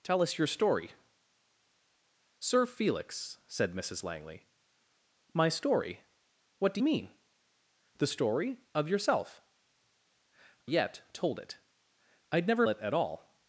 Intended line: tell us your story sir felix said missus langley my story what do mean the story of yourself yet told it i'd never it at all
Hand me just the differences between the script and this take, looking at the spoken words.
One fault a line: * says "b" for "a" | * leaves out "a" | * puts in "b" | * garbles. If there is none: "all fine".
all fine